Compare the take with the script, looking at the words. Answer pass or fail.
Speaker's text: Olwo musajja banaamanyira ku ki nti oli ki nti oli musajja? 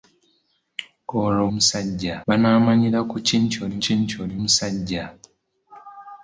pass